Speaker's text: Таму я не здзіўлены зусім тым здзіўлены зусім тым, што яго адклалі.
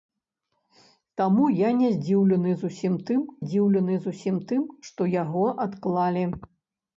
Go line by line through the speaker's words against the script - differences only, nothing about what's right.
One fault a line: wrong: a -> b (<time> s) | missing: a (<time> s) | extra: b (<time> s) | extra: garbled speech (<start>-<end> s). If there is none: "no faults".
no faults